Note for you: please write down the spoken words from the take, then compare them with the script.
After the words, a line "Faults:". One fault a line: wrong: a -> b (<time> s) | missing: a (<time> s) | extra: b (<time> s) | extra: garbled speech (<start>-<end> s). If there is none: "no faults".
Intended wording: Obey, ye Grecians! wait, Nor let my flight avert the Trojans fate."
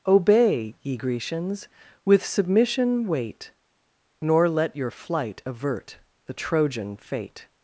Obey, ye Grecians! with submission wait, Nor let your flight avert the Trojan fate."
Faults:
extra: with submission (2.1 s)
wrong: my -> your (4.8 s)
wrong: Trojans -> Trojan (6.3 s)